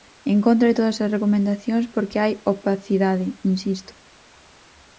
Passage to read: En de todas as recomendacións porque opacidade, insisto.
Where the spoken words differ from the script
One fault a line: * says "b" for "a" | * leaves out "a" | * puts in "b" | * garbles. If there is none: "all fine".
* puts in "contra"
* puts in "hai"